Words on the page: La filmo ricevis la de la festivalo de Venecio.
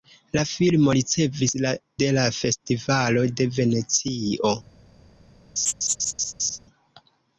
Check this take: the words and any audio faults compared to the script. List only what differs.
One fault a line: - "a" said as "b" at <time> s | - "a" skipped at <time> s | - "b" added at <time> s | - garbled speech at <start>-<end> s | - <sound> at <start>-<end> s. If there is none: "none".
- laugh at 5.6-6.6 s